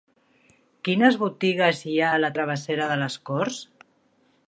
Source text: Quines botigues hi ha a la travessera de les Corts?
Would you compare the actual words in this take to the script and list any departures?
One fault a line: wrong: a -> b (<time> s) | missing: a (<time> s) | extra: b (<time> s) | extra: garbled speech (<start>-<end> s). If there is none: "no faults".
no faults